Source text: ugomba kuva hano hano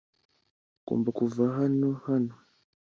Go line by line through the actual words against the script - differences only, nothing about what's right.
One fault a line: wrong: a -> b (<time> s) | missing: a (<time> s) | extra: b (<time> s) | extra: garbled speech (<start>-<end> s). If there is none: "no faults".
no faults